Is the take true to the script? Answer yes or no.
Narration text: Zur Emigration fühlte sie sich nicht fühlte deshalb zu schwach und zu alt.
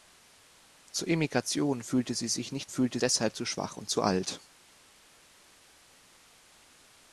yes